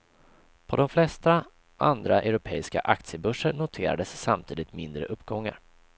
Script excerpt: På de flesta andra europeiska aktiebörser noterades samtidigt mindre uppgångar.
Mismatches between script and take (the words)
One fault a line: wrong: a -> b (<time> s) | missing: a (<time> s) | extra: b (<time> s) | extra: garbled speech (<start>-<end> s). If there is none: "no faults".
no faults